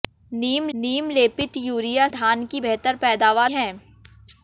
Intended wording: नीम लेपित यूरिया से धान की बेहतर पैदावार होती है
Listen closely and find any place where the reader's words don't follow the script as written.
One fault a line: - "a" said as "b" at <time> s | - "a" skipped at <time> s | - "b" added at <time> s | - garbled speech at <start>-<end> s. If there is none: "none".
- "नीम" added at 0.7 s
- "से" skipped at 2.1 s
- "होती" skipped at 3.5 s